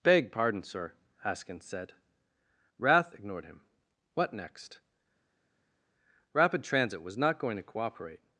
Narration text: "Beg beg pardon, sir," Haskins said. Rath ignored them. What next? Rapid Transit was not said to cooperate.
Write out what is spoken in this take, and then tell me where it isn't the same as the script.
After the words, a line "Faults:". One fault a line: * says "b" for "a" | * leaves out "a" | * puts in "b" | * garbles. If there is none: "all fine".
"Beg pardon, sir," Haskins said. Rath ignored him. What next? Rapid Transit was not going to cooperate.
Faults:
* leaves out "beg"
* says "him" for "them"
* says "going" for "said"